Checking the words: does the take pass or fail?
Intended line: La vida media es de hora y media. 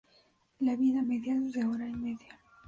pass